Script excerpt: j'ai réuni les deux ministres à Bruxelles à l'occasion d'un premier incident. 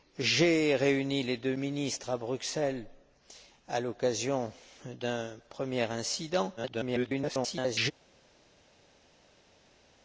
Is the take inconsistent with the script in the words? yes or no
yes